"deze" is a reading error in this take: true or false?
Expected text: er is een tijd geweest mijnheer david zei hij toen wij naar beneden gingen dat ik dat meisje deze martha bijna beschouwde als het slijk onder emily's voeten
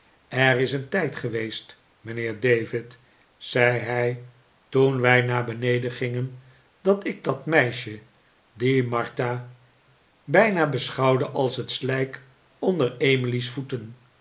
true